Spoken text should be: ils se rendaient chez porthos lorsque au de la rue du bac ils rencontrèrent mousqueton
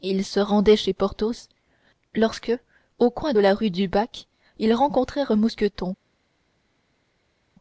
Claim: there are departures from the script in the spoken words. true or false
true